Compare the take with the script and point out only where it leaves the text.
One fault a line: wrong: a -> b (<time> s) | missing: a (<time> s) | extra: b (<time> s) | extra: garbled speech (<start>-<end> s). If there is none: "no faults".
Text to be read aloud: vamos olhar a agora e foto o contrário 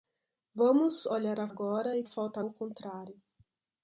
no faults